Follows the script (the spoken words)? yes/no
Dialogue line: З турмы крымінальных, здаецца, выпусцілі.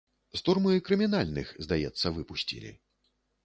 yes